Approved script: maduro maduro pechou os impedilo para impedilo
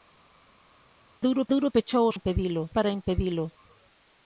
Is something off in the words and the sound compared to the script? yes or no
no